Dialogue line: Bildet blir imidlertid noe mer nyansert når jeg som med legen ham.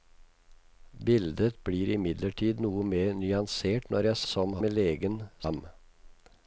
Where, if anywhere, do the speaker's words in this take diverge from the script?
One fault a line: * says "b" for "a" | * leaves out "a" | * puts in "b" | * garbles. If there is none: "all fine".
all fine